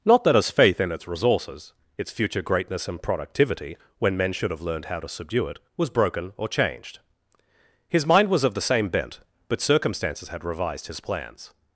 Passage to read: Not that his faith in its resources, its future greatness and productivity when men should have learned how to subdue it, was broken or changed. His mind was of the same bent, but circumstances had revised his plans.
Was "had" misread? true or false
false